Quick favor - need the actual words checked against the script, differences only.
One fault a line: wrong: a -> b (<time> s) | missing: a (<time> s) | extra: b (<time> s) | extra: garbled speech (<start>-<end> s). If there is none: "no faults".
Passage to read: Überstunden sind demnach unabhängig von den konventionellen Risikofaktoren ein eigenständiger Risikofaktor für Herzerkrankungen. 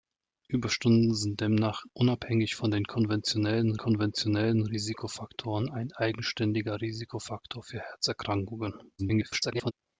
extra: konventionellen (3.7 s)
extra: garbled speech (9.0-9.7 s)